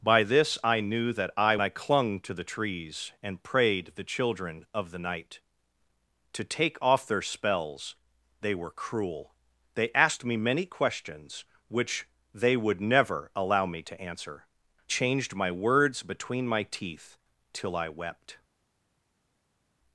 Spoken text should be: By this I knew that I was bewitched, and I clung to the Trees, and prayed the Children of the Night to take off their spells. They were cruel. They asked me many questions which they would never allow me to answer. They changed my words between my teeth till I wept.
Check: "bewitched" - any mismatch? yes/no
yes